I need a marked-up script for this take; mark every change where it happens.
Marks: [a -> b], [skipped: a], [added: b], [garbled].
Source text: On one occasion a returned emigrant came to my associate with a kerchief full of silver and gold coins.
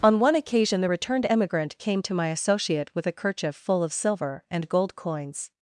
On one occasion [a -> the] returned emigrant came to my associate with a kerchief full of silver and gold coins.